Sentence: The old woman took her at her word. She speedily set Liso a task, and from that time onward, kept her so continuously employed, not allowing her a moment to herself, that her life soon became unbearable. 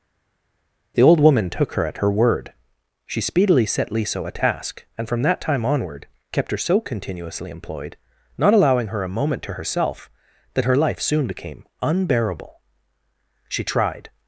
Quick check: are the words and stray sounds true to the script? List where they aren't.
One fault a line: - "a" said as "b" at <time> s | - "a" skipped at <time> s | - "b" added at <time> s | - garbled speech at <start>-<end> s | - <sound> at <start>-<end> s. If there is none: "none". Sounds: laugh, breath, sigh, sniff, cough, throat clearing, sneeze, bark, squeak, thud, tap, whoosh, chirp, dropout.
- "She tried" added at 13.5 s